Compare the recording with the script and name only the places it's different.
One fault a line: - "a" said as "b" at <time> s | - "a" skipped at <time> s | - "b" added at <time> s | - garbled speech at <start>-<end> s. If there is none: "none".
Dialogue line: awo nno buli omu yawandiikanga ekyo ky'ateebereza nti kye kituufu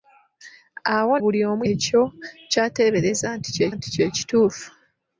- "nno" skipped at 1.1 s
- "yawandiikanga" skipped at 1.6 s
- "nti kye" added at 3.7 s